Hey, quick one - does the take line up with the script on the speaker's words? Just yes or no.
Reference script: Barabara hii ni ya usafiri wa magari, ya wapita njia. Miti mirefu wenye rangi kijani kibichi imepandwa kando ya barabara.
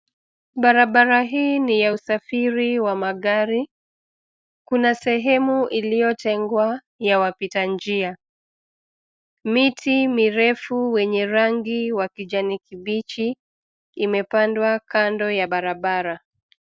no